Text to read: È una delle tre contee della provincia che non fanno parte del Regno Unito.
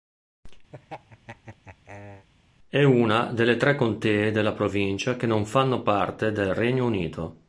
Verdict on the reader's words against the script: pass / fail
pass